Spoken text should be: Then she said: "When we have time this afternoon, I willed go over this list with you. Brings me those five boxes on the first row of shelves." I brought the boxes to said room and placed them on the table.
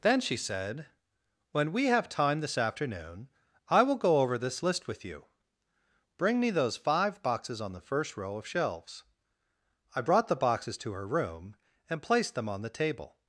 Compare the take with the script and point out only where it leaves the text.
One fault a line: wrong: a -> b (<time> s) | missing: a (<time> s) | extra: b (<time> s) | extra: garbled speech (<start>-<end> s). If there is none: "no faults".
wrong: willed -> will (3.8 s)
wrong: Brings -> Bring (6.2 s)
wrong: said -> her (10.9 s)